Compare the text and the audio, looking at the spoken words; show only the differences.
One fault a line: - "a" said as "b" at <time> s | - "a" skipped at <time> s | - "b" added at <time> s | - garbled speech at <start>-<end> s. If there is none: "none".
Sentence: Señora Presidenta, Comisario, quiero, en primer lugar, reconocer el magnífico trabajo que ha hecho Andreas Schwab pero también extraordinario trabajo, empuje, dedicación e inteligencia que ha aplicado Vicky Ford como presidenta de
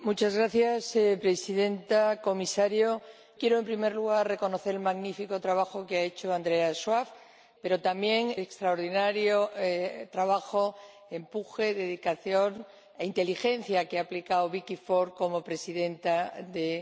none